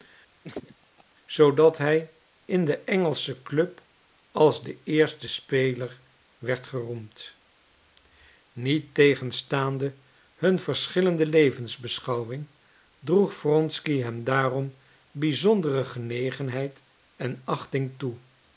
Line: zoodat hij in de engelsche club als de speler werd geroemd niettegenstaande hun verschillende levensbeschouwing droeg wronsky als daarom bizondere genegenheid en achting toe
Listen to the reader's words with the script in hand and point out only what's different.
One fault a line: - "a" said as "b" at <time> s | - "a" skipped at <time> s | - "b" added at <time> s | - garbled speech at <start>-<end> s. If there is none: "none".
- "eerste" added at 4.8 s
- "als" said as "hem" at 14.0 s